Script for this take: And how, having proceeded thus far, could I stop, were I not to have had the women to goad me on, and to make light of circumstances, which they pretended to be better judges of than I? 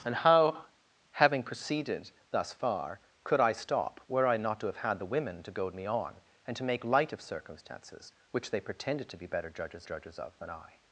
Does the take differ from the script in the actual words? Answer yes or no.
yes